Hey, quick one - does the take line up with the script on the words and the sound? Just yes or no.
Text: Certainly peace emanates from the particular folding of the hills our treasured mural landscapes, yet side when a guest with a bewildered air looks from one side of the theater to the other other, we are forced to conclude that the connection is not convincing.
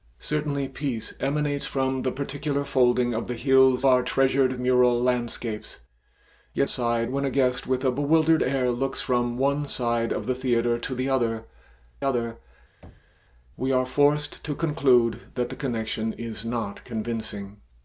no